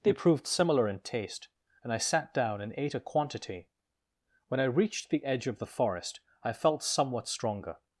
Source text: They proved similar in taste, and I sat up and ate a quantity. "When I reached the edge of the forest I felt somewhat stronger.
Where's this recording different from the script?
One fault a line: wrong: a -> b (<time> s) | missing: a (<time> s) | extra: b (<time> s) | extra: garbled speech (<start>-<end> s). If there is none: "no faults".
wrong: up -> down (2.3 s)